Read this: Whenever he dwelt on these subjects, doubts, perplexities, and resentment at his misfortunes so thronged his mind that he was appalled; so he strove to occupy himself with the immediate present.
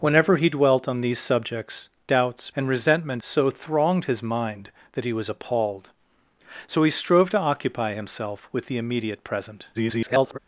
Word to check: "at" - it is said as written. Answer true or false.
false